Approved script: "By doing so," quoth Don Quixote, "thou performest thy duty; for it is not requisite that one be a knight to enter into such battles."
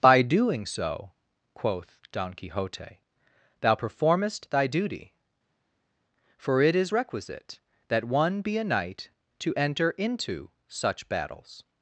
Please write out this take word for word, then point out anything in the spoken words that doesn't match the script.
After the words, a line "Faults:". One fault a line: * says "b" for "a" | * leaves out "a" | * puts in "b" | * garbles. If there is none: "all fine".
"By doing so," quoth Don Quixote, "thou performest thy duty; for it is requisite that one be a knight to enter into such battles."
Faults:
* leaves out "not"